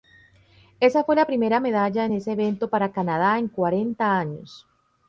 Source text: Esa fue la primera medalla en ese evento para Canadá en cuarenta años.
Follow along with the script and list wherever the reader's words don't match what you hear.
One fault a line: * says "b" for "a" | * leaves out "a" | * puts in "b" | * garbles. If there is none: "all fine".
all fine